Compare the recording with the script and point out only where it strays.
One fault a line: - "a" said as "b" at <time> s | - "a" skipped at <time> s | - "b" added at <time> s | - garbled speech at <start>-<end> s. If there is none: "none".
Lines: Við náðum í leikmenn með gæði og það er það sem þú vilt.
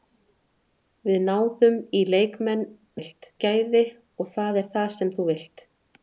- "með" said as "vilt" at 3.0 s